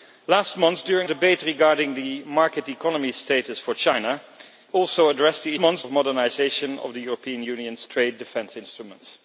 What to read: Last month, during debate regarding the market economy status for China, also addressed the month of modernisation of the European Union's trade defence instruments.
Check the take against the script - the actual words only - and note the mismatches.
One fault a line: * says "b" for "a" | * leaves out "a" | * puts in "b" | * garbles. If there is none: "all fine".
all fine